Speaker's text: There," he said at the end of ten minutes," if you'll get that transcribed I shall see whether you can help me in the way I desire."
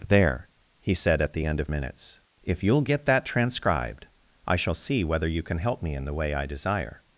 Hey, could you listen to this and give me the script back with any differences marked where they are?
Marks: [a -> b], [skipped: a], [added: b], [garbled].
There," he said at the end of [skipped: ten] minutes," if you'll get that transcribed I shall see whether you can help me in the way I desire."